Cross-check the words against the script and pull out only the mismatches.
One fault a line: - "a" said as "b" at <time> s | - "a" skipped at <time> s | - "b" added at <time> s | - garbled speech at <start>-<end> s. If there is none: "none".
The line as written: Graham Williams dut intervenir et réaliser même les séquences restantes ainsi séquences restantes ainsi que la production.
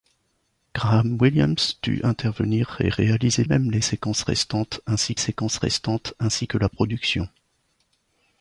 none